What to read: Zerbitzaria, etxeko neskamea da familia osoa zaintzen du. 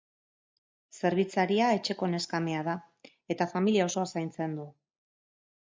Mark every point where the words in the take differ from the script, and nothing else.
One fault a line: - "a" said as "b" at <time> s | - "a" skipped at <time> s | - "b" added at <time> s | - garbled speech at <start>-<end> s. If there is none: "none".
- "eta" added at 3.4 s